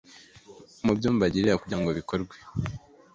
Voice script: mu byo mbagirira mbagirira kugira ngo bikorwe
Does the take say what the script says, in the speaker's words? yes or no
no